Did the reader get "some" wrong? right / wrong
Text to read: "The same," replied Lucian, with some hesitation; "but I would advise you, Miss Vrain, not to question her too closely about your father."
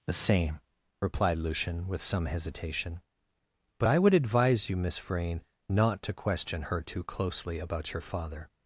right